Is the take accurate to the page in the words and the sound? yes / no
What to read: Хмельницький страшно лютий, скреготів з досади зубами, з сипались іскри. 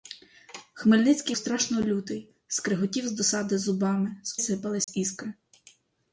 no